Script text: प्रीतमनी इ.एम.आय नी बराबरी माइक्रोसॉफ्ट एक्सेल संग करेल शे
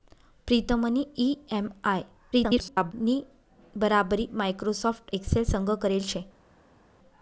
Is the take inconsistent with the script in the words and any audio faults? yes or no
yes